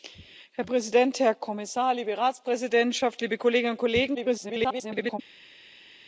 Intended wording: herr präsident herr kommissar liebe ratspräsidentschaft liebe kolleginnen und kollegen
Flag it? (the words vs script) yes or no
yes